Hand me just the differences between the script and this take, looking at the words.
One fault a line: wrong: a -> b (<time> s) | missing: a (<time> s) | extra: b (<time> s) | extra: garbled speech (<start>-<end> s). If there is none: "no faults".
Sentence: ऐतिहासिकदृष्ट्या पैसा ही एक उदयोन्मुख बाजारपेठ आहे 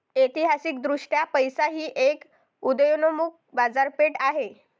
no faults